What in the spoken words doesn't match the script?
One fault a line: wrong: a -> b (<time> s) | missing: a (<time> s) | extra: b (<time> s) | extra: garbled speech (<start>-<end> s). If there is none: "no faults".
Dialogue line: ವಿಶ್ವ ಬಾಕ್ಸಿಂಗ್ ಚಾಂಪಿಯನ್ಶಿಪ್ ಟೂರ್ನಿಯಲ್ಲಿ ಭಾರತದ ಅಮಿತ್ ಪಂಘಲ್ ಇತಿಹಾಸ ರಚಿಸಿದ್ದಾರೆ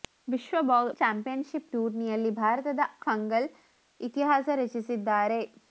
missing: ಬಾಕ್ಸಿಂಗ್ (0.6 s)
missing: ಅಮಿತ್ (2.8 s)